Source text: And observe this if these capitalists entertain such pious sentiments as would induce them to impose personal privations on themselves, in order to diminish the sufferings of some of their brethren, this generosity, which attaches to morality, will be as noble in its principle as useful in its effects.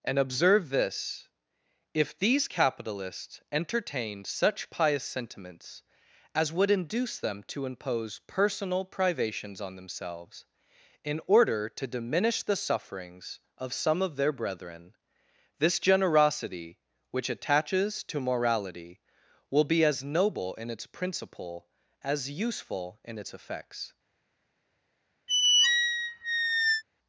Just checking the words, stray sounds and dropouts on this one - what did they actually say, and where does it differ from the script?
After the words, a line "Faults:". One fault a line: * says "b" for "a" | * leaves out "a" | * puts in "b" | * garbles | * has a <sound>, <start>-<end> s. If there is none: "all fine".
And observe this if these capitalists entertained such pious sentiments as would induce them to impose personal privations on themselves, in order to diminish the sufferings of some of their brethren, this generosity, which attaches to morality, will be as noble in its principle as useful in its effects.
Faults:
* says "entertained" for "entertain"
* has a squeak, 25.3-26.8 s